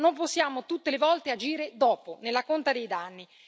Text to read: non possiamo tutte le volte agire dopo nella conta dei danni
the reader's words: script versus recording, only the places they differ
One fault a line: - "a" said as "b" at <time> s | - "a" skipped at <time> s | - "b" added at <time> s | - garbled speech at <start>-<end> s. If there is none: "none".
none